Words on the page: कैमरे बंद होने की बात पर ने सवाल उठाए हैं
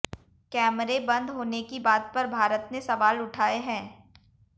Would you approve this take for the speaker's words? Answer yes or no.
no